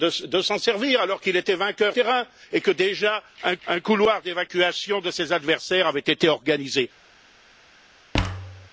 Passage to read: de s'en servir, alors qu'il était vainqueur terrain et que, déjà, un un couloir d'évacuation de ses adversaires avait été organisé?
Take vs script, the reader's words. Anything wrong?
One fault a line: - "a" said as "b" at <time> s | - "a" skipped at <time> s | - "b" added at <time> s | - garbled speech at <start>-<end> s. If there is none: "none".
none